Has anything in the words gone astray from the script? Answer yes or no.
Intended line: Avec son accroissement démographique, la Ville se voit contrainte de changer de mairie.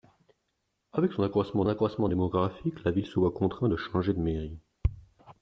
yes